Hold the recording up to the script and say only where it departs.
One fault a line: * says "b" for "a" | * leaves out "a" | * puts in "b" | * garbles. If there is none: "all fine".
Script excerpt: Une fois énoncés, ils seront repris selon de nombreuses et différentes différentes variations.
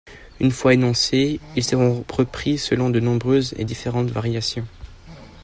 * leaves out "différentes"